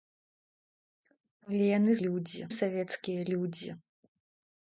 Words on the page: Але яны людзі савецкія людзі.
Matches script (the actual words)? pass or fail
pass